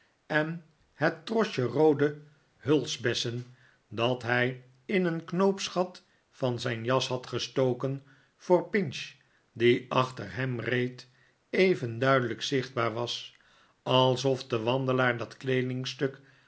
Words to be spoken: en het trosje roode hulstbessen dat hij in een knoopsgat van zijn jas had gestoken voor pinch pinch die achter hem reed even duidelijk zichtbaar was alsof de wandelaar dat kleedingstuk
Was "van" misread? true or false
false